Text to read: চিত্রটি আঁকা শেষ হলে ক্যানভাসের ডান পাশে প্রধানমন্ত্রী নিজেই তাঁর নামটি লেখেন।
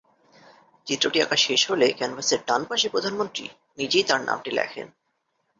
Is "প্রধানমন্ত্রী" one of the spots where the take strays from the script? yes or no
no